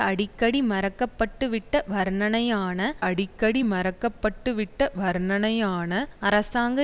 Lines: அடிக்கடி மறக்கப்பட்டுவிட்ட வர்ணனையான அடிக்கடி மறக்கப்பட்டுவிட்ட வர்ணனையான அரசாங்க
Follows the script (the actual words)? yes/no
yes